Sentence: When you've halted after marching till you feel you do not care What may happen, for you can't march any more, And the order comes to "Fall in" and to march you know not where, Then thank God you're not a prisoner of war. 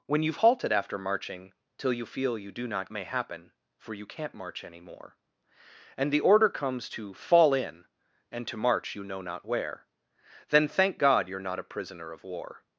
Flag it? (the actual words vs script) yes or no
yes